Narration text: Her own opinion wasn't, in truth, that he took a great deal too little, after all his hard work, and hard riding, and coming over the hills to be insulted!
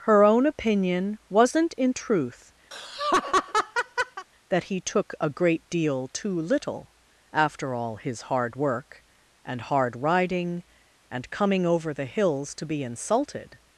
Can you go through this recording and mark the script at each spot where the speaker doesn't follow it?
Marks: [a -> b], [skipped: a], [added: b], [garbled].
Her own opinion wasn't, in truth, that he took a great deal too little, after all his hard work, and hard riding, and coming over the hills to be insulted!